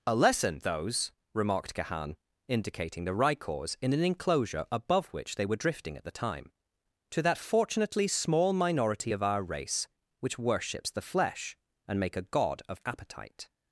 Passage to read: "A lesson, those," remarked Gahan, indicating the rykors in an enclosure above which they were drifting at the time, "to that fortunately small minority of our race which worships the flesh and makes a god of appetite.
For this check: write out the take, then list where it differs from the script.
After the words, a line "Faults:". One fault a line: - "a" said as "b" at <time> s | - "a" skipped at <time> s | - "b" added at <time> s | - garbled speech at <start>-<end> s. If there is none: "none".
"A lesson, those," remarked Gahan, indicating the rykors in an enclosure above which they were drifting at the time, "to that fortunately small minority of our race which worships the flesh and make a god of appetite.
Faults:
- "makes" said as "make" at 12.0 s